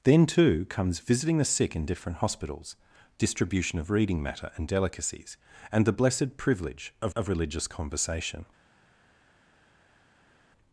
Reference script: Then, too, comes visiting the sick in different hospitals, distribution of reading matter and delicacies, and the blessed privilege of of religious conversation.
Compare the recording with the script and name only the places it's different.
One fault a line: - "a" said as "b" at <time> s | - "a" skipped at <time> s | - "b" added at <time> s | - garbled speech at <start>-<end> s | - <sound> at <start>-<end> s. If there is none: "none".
none